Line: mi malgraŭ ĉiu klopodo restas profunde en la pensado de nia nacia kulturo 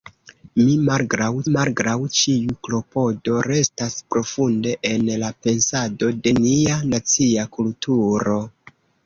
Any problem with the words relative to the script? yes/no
yes